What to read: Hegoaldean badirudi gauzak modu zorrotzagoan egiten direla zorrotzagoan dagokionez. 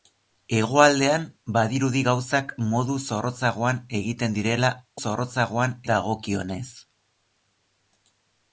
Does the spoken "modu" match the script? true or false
true